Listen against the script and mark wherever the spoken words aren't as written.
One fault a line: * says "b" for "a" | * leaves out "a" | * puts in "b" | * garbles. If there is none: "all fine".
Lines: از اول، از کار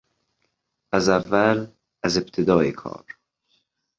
* puts in "ابتدای"